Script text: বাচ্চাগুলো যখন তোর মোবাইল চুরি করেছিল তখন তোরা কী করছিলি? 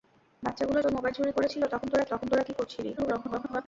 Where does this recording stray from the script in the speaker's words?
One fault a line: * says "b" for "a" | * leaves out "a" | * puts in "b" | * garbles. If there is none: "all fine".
* leaves out "যখন"
* puts in "তখন তোরা"
* garbles